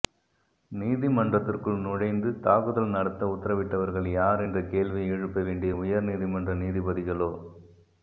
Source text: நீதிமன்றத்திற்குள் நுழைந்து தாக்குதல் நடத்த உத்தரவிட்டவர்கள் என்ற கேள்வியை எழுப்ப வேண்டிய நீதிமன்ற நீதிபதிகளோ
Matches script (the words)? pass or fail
fail